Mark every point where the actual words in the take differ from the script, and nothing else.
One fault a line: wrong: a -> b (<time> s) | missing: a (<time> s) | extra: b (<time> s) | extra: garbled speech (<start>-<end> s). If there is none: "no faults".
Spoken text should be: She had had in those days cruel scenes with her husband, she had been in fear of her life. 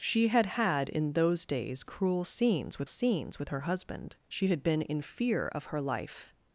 extra: scenes with (2.9 s)